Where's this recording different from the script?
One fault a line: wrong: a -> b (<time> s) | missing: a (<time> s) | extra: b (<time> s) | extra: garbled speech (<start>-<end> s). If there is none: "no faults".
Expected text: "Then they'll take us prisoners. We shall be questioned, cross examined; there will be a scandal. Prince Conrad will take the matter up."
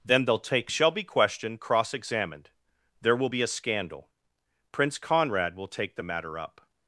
missing: us prisoners We (0.7 s)